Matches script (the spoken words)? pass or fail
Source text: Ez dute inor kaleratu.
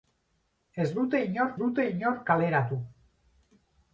fail